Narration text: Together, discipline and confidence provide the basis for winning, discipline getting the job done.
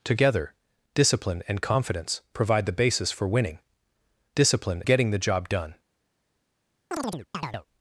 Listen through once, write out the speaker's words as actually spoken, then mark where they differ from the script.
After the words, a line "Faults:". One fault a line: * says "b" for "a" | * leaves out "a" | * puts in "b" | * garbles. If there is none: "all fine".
Together, discipline and confidence provide the basis for winning, discipline getting the job done.
Faults:
all fine